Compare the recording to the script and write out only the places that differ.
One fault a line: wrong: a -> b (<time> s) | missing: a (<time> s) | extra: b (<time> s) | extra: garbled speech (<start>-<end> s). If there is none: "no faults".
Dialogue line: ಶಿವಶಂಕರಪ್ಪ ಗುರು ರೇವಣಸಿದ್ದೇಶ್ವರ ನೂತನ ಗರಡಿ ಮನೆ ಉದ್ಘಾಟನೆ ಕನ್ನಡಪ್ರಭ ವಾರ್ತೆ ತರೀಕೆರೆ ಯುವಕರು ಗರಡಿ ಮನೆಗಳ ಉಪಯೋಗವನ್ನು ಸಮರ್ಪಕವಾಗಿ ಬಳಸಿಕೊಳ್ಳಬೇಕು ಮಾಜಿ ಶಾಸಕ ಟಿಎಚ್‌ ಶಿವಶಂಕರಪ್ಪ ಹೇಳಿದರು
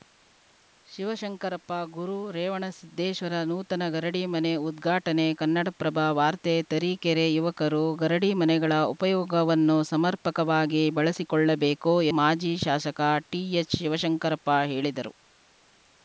no faults